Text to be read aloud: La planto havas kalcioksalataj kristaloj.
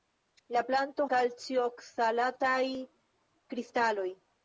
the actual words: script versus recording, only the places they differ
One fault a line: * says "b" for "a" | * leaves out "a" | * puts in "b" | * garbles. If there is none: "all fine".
* leaves out "havas"